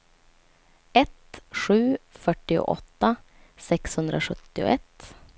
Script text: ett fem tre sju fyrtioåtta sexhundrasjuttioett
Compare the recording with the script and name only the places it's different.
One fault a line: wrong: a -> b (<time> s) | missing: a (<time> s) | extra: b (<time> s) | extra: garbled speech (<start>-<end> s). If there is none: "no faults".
missing: fem tre (1.4 s)